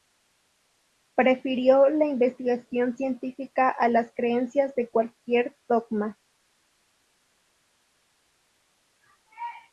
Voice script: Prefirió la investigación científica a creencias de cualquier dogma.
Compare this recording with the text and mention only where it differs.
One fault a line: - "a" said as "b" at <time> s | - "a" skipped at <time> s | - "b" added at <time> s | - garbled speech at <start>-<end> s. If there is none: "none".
- "las" added at 3.9 s